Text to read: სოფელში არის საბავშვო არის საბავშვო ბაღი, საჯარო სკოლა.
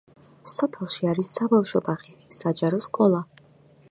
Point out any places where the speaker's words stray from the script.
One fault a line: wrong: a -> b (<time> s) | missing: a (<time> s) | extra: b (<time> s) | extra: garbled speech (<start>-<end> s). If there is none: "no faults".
missing: არის საბავშვო (1.8 s)